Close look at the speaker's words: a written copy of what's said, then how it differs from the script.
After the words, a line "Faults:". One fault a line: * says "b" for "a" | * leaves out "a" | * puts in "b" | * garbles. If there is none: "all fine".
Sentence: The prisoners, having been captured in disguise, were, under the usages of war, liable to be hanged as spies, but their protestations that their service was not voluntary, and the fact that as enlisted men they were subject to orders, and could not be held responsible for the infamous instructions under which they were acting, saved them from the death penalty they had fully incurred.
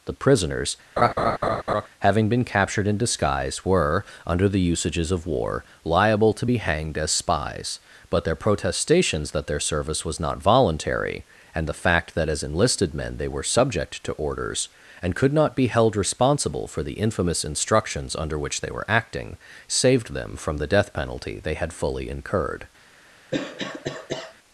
The prisoners, having been captured in disguise, were, under the usages of war, liable to be hanged as spies, but their protestations that their service was not voluntary, and the fact that as enlisted men they were subject to orders, and could not be held responsible for the infamous instructions under which they were acting, saved them from the death penalty they had fully incurred.
Faults:
all fine